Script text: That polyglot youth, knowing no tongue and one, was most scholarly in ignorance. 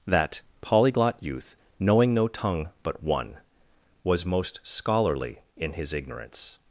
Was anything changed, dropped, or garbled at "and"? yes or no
yes